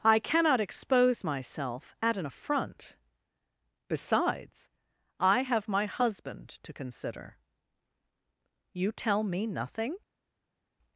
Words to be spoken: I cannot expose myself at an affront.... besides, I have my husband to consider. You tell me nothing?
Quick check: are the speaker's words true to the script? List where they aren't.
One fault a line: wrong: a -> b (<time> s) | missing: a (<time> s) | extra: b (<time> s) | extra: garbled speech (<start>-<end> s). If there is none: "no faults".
no faults